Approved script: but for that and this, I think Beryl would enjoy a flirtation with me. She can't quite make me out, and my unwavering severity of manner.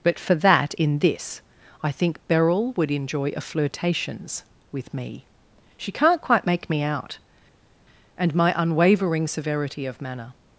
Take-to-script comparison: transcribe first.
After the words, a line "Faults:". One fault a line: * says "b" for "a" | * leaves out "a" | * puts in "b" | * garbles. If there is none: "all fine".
but for that in this, I think Beryl would enjoy a flirtations with me. She can't quite make me out, and my unwavering severity of manner.
Faults:
* says "in" for "and"
* says "flirtations" for "flirtation"